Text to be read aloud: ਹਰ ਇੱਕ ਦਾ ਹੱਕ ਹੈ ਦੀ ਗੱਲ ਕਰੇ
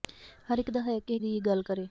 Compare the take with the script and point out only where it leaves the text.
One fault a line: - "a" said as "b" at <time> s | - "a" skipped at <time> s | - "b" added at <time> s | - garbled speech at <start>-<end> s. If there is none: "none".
none